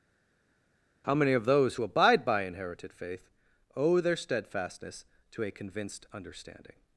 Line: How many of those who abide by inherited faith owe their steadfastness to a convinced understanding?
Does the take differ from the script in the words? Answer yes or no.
no